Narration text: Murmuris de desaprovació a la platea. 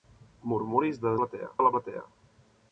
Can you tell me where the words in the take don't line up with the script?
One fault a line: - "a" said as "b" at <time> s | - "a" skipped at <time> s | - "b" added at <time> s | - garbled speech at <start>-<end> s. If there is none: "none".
- "desaprovació" said as "platea" at 1.2 s